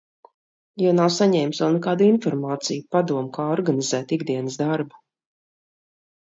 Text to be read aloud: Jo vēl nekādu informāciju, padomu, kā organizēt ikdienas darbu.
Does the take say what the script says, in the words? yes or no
no